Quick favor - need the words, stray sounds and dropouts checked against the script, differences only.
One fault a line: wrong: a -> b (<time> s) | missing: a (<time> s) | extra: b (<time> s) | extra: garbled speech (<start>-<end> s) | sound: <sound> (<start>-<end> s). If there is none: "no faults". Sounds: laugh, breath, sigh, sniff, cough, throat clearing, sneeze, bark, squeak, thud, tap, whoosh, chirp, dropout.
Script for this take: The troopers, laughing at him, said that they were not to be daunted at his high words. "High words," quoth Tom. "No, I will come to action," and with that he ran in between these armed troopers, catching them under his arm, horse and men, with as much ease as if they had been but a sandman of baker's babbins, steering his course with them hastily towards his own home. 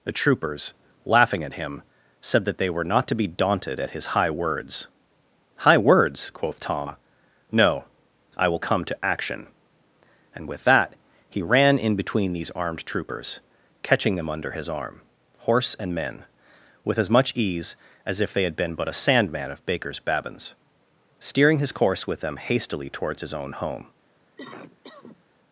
sound: cough (24.4-25.2 s)